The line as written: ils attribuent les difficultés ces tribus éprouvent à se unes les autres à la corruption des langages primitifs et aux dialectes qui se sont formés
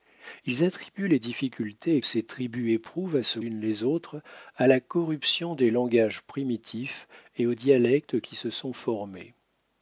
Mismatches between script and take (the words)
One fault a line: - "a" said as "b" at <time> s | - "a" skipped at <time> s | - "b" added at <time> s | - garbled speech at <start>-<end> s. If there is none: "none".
none